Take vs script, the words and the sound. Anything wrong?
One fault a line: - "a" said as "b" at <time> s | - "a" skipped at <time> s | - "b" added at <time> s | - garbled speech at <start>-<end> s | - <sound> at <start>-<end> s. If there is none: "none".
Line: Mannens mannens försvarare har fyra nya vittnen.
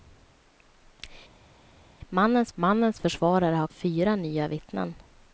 none